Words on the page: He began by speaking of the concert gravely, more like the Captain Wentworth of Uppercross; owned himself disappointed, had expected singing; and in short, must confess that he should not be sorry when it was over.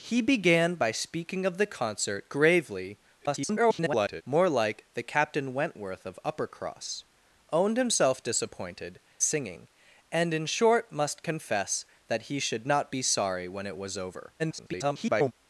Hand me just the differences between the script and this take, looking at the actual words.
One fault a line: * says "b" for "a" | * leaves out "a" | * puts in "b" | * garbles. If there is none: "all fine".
* garbles
* leaves out "had expected"
* garbles